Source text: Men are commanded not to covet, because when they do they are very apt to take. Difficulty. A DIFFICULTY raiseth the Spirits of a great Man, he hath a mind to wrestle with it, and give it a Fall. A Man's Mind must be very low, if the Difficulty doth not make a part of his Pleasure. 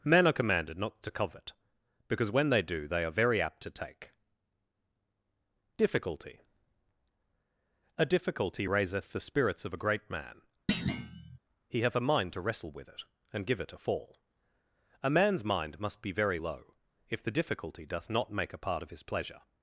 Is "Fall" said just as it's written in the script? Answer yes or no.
yes